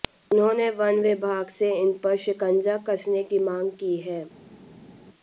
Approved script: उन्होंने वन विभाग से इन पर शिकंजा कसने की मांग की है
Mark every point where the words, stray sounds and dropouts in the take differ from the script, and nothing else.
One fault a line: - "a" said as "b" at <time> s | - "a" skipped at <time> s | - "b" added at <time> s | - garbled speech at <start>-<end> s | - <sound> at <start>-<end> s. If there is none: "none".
none